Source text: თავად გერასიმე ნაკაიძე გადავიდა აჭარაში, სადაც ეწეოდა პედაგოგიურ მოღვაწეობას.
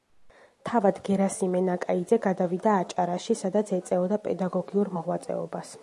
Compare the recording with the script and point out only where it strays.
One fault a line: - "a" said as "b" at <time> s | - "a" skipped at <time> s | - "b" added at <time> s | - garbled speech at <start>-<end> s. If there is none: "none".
none